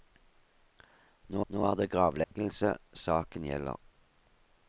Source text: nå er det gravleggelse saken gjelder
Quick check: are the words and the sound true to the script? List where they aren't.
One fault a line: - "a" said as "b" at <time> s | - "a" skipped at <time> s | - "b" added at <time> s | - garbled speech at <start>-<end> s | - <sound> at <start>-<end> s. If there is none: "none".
- "nå" added at 1.5 s
- dropout at 2.2-2.3 s